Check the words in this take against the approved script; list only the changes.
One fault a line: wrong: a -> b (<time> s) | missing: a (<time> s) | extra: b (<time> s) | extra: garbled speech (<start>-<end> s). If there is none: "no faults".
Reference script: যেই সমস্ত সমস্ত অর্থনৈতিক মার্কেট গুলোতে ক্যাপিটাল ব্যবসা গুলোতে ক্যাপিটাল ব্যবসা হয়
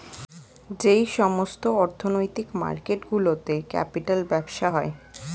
missing: সমস্ত (1.6 s)
missing: গুলোতে ক্যাপিটাল ব্যবসা (4.7 s)